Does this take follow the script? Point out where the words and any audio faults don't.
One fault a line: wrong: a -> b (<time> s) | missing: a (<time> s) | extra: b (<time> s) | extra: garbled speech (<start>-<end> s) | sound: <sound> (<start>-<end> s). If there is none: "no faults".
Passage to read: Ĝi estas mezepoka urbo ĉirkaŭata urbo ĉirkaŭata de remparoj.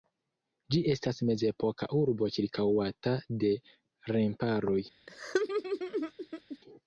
missing: urbo ĉirkaŭata (3.2 s)
sound: laugh (5.1-6.6 s)